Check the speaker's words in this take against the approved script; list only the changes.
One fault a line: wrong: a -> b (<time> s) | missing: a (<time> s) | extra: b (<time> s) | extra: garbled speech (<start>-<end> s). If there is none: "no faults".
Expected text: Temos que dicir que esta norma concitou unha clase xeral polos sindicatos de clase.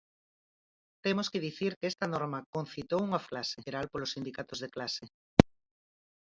no faults